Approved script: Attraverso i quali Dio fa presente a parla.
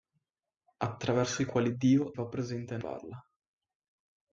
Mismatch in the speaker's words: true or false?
false